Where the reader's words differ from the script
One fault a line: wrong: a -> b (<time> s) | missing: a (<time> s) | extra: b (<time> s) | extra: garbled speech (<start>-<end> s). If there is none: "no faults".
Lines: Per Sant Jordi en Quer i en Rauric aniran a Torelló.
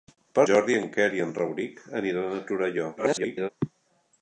missing: Sant (0.5 s)
extra: garbled speech (3.0-3.5 s)